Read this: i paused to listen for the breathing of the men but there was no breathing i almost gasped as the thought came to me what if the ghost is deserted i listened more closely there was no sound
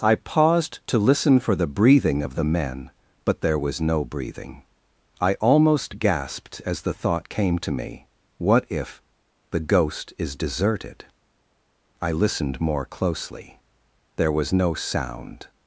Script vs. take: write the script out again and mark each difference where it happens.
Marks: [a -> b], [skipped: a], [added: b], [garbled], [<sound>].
i paused to listen for the breathing of the men but there was no breathing i almost gasped as the thought came to me what if the ghost is deserted i listened more closely there was no sound